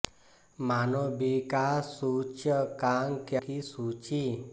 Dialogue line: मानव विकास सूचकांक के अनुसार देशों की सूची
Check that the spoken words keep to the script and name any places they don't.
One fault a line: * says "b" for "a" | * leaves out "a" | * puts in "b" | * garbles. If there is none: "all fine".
* leaves out "अनुसार देशों"